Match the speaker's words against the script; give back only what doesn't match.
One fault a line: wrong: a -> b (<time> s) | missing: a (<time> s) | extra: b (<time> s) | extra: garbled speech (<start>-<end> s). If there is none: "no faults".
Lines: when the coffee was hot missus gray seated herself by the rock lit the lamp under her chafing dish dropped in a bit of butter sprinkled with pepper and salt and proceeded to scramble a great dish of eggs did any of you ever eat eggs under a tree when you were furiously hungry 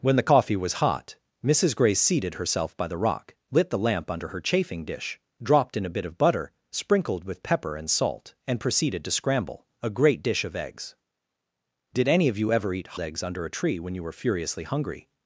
no faults